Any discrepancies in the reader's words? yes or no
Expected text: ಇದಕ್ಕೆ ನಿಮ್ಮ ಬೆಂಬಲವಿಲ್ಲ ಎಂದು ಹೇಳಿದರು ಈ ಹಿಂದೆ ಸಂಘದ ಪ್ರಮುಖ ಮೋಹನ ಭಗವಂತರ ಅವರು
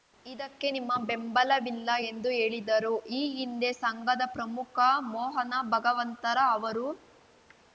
no